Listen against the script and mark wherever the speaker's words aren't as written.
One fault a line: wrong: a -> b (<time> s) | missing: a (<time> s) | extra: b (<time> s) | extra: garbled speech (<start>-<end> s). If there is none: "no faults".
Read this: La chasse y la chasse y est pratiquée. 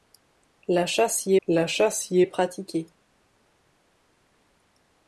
no faults